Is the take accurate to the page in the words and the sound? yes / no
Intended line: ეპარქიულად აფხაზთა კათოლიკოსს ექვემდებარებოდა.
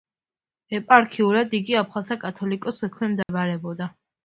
no